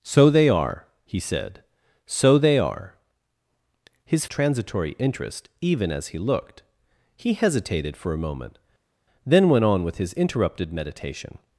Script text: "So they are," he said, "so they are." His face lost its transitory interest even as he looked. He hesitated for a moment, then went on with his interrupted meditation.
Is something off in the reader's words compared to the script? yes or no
yes